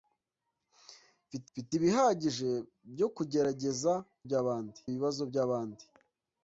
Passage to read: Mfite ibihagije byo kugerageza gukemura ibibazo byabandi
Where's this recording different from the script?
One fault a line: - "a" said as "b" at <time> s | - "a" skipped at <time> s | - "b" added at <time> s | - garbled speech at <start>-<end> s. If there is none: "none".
- "mfite" added at 1.5 s
- "gukemura" said as "byabandi" at 4.3 s